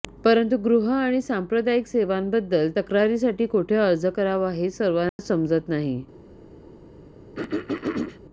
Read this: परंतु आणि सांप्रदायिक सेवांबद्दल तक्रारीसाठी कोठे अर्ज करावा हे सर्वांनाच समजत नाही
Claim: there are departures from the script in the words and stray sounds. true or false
true